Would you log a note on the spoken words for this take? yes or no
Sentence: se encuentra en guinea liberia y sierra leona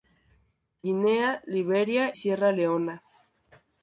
yes